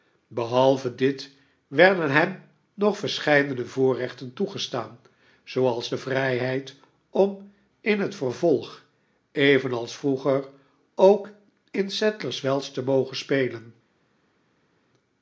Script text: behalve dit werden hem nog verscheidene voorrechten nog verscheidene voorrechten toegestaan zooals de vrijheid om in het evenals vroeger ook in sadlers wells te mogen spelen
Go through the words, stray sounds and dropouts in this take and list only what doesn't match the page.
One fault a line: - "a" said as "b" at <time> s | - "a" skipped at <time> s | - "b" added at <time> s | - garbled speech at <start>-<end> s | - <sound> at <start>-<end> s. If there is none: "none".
- "nog verscheidene voorrechten" skipped at 4.3 s
- "vervolg" added at 8.1 s